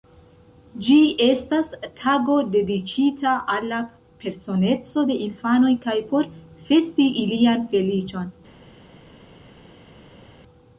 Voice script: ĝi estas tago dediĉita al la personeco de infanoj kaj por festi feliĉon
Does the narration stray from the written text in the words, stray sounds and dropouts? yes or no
yes